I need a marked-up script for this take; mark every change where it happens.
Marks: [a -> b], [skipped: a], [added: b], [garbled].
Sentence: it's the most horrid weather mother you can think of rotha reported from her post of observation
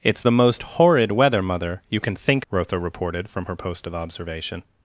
it's the most horrid weather mother you can think [skipped: of] rotha reported from her post of observation